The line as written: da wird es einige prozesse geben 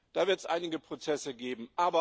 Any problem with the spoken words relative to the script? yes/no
no